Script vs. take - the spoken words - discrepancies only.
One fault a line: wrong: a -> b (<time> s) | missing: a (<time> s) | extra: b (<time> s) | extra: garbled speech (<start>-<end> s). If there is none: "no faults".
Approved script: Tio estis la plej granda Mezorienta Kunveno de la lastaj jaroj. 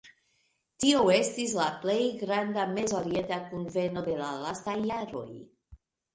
no faults